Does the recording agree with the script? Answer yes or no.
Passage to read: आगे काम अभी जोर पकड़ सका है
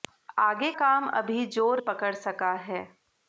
yes